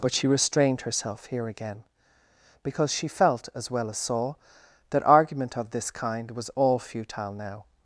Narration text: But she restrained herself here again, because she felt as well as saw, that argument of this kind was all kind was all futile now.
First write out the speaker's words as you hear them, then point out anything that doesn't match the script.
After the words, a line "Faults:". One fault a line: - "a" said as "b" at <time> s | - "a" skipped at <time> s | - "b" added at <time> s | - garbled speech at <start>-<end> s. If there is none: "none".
But she restrained herself here again, because she felt as well as saw, that argument of this kind was all futile now.
Faults:
- "kind was all" skipped at 6.8 s